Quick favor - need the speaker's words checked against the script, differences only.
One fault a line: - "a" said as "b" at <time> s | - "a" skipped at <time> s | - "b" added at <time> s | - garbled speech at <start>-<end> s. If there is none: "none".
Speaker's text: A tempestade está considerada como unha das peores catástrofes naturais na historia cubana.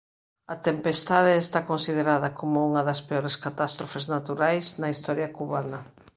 none